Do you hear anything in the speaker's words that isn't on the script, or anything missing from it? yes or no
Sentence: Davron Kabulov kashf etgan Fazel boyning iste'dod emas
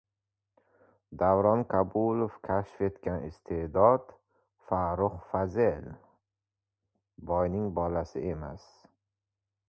yes